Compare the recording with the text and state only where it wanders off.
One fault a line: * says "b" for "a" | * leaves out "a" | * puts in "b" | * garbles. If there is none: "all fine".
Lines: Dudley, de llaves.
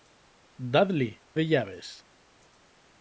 all fine